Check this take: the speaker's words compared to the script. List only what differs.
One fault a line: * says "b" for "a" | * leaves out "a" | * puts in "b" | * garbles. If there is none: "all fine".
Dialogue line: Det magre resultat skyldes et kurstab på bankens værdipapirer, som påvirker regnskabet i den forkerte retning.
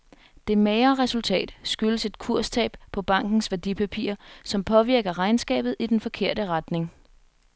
all fine